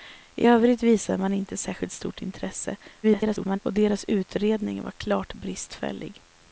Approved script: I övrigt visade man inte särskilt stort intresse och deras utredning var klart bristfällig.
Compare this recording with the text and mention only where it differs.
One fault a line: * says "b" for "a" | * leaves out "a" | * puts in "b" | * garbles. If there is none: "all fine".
* garbles